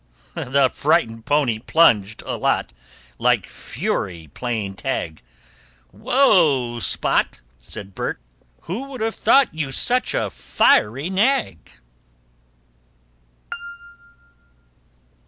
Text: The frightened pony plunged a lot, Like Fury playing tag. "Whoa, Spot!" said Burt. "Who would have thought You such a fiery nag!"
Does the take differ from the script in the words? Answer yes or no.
no